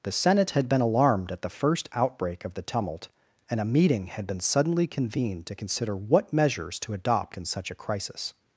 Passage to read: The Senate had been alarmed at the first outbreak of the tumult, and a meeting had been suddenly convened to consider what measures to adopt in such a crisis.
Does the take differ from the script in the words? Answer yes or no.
no